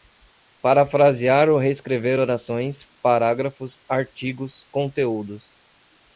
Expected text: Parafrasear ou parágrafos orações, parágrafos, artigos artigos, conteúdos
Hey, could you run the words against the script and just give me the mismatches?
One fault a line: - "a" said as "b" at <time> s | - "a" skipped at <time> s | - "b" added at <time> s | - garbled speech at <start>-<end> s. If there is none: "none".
- "parágrafos" said as "reescrever" at 1.6 s
- "artigos" skipped at 4.7 s